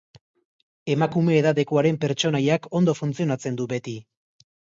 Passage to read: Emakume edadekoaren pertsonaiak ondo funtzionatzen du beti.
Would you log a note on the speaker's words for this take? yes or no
no